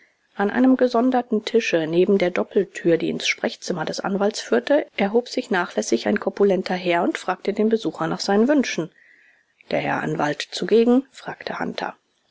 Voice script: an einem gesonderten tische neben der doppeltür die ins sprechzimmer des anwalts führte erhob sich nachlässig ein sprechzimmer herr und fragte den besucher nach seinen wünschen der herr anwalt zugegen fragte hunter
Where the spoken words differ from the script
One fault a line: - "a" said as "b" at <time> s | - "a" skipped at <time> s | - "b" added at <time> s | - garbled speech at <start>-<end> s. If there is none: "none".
- "sprechzimmer" said as "korpulenter" at 6.2 s